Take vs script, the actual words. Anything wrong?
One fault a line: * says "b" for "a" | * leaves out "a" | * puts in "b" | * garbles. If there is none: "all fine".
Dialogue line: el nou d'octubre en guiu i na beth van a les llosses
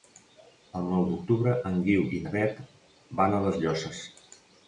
all fine